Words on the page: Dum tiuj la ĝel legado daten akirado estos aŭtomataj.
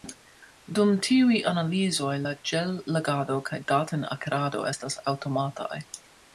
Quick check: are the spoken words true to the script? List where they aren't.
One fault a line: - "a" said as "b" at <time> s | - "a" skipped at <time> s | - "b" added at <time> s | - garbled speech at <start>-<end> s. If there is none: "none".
- "analizoj" added at 1.5 s
- "kaj" added at 3.5 s
- "estos" said as "estas" at 4.7 s